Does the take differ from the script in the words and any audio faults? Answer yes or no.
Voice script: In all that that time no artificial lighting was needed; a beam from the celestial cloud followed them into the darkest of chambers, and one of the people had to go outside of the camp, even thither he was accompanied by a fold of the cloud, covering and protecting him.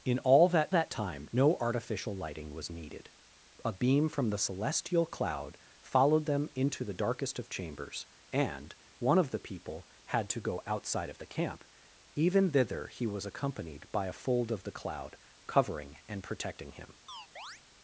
yes